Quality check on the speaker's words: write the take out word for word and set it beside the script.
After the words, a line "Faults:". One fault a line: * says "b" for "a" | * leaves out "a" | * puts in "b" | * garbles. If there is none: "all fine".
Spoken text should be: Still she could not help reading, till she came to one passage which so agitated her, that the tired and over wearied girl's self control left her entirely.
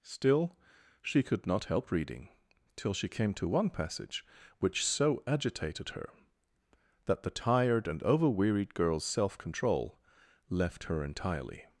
Still she could not help reading, till she came to one passage which so agitated her, that the tired and over wearied girl's self control left her entirely.
Faults:
all fine